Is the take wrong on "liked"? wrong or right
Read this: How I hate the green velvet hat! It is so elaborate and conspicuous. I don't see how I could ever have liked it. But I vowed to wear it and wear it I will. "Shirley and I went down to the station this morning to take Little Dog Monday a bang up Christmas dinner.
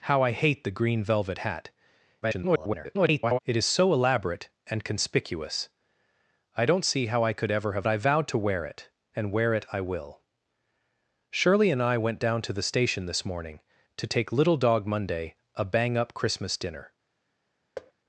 wrong